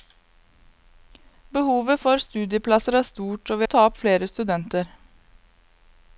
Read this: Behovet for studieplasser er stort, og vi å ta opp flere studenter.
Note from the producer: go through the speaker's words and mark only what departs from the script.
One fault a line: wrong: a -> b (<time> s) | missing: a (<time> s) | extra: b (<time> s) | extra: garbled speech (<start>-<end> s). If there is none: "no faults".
no faults